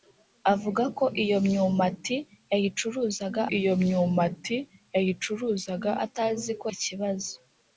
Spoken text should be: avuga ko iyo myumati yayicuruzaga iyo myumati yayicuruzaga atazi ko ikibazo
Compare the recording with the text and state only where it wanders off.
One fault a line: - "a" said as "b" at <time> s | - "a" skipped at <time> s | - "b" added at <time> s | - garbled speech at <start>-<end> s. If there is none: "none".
none